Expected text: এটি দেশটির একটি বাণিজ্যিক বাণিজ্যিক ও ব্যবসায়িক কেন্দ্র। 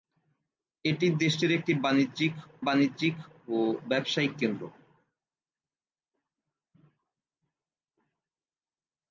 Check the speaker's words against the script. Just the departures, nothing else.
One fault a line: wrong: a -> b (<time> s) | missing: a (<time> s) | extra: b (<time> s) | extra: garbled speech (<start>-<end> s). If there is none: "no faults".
no faults